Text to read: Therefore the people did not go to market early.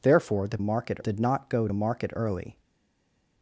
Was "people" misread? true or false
true